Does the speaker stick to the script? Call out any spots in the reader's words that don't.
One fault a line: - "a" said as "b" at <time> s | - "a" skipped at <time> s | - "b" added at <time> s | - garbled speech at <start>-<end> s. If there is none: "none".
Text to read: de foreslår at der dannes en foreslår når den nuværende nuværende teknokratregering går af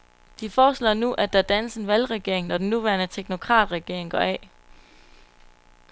- "nu" added at 0.9 s
- "foreslår" said as "valgregering" at 1.9 s
- "nuværende" skipped at 3.1 s